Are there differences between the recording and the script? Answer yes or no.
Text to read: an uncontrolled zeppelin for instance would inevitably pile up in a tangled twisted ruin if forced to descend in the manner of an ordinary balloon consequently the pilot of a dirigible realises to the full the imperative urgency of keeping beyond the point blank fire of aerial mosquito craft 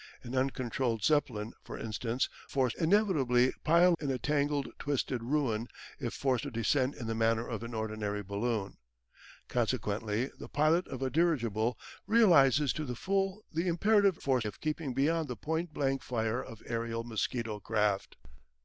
yes